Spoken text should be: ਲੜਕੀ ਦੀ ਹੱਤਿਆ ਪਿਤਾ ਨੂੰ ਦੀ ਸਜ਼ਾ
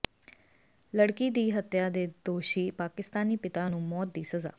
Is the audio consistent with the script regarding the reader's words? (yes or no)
no